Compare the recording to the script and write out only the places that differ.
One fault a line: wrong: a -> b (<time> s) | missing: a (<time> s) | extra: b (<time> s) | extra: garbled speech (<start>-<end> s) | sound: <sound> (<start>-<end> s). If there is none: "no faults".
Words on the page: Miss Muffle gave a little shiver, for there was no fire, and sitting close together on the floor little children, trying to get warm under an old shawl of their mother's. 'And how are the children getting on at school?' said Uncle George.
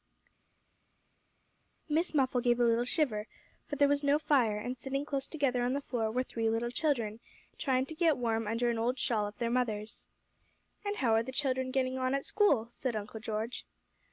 extra: were three (6.1 s)